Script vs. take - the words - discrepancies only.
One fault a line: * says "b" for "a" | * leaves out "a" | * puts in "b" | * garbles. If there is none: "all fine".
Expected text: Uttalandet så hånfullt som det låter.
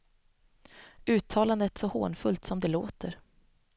all fine